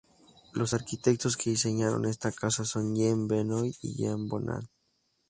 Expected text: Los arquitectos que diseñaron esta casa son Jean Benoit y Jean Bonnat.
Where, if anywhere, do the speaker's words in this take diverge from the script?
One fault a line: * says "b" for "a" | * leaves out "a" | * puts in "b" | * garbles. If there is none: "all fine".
all fine